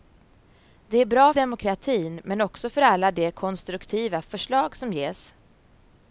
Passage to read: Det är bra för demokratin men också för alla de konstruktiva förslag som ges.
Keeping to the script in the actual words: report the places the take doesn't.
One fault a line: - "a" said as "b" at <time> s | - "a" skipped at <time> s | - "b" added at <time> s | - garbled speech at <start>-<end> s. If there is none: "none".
- "för" skipped at 1.3 s